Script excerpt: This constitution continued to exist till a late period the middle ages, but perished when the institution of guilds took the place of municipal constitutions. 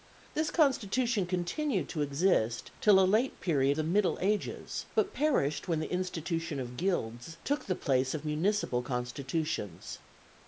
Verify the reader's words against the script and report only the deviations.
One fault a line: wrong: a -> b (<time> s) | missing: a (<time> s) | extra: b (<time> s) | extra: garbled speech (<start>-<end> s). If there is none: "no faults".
no faults